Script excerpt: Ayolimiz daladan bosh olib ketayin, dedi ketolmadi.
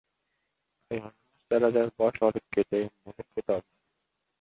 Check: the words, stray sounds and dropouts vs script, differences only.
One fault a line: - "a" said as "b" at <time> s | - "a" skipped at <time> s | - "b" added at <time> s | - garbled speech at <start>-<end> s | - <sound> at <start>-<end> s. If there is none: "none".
none